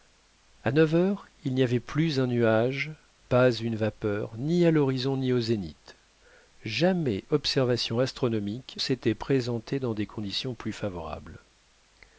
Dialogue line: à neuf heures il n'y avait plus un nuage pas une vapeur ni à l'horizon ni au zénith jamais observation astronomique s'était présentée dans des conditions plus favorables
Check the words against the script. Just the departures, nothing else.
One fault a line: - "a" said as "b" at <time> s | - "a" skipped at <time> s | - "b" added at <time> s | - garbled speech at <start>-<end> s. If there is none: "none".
none